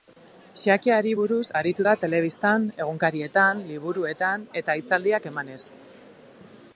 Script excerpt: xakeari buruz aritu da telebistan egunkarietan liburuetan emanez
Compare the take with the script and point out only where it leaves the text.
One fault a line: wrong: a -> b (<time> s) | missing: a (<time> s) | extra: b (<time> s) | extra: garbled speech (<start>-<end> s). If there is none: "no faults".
extra: eta hitzaldiak (4.6 s)